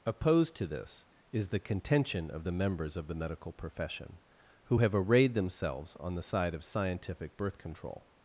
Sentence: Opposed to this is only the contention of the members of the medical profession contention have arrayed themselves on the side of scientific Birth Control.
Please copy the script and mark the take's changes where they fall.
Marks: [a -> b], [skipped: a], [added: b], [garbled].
Opposed to this is [skipped: only] the contention of the members of the medical profession [contention -> who] have arrayed themselves on the side of scientific Birth Control.